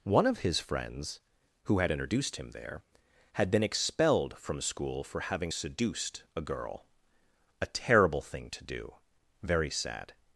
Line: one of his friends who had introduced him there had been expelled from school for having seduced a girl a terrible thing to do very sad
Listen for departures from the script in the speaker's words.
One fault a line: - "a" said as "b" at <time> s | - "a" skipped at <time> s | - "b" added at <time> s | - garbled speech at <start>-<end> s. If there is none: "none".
none